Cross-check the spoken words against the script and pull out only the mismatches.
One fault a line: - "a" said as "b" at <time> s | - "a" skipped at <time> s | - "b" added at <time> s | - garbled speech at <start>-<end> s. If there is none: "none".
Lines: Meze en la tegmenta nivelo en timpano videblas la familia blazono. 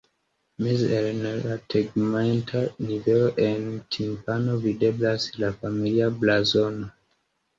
none